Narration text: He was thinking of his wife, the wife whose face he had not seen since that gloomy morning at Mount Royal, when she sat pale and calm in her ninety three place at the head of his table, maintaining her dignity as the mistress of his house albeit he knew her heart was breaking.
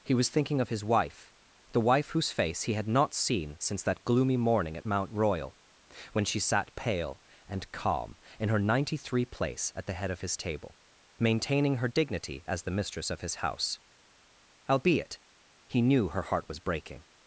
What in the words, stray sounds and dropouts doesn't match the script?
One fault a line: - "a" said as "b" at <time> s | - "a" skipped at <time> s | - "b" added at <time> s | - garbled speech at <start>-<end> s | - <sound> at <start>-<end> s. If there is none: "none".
none